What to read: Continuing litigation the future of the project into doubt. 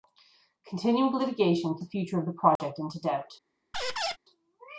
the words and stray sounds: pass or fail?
fail